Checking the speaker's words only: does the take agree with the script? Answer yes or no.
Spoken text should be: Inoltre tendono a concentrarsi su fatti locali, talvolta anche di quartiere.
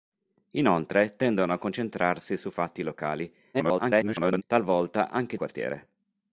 no